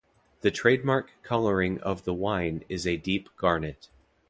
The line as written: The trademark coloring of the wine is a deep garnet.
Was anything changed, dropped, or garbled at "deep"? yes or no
no